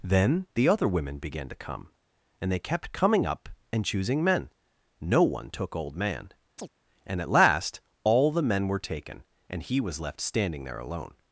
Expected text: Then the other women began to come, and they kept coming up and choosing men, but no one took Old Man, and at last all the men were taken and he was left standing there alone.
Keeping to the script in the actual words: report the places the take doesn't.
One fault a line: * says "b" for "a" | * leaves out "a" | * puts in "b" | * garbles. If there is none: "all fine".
* leaves out "but"